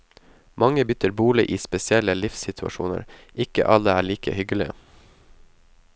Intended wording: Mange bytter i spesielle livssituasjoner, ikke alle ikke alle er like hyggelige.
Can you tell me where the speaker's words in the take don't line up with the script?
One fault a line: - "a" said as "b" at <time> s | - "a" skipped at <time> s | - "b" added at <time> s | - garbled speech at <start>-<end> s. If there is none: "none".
- "bolig" added at 1.2 s
- "ikke alle" skipped at 4.0 s